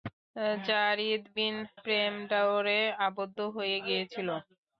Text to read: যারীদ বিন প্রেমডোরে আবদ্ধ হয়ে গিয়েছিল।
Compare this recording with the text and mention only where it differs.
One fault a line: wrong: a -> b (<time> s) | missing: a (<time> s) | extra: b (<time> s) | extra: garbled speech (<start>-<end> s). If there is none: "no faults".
no faults